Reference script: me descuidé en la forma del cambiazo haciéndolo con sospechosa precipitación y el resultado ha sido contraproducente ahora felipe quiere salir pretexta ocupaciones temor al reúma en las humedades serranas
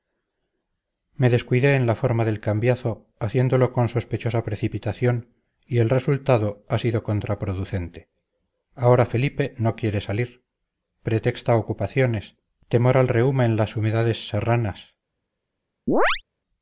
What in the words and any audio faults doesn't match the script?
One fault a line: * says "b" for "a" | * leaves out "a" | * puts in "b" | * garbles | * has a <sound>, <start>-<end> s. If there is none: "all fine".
* puts in "no"
* has a chirp, 15.9-16.2 s